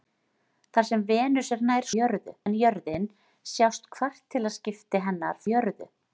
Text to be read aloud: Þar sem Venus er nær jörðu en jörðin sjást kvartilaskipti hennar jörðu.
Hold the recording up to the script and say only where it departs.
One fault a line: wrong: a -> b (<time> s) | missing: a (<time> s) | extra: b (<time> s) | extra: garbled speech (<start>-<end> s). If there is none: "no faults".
no faults